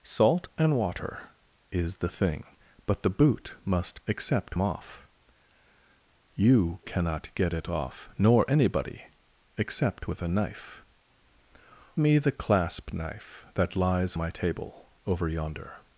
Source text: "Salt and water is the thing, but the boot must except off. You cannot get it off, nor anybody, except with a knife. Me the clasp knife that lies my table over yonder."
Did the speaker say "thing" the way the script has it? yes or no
yes